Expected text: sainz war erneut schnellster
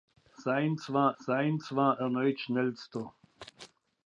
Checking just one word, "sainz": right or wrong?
right